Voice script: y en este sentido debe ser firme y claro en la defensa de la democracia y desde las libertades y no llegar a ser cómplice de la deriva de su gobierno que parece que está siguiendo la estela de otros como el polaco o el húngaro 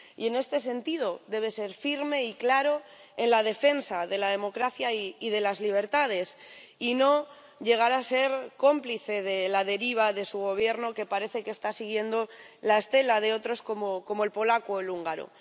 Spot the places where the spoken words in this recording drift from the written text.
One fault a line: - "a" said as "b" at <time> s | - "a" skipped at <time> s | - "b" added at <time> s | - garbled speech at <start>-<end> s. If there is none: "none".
- "desde" said as "de" at 5.3 s